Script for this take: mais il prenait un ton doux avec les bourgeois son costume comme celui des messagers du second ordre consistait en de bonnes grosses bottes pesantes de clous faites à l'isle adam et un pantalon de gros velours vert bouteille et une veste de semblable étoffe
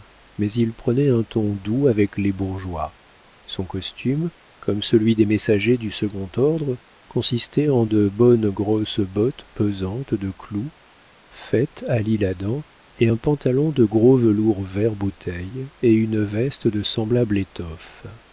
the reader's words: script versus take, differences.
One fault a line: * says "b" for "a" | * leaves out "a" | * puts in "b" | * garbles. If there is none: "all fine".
all fine